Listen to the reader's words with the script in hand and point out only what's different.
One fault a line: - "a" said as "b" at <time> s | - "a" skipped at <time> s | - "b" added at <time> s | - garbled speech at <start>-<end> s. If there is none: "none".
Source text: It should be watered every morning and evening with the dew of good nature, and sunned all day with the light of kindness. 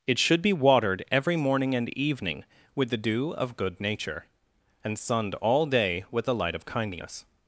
none